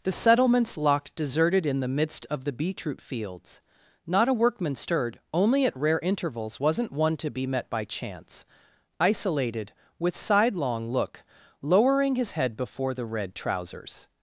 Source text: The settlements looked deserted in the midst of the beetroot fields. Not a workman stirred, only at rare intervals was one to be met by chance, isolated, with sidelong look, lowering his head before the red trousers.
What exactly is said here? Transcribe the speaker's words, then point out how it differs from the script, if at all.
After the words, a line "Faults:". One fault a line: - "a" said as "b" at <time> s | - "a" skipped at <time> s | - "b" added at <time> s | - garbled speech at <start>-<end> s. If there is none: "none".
The settlements locked deserted in the midst of the beetroot fields. Not a workman stirred, only at rare intervals wasn't one to be met by chance, isolated, with sidelong look, lowering his head before the red trousers.
Faults:
- "looked" said as "locked" at 0.8 s
- "was" said as "wasn't" at 6.6 s